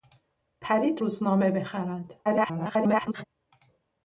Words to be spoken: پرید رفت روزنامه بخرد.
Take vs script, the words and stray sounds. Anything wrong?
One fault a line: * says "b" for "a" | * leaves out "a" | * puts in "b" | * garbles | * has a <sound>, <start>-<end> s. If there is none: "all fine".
* leaves out "رفت"
* garbles